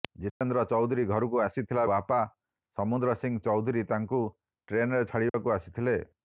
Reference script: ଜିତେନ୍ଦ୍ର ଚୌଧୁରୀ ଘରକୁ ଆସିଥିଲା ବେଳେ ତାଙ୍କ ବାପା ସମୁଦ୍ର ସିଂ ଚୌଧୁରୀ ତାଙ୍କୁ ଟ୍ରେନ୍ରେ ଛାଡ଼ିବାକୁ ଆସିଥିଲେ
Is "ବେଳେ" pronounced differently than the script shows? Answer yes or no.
yes